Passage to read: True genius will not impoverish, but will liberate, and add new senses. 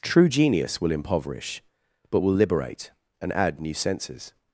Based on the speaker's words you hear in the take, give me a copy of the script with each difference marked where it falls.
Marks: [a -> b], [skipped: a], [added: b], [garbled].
True genius will [skipped: not] impoverish, but will liberate, and add new senses.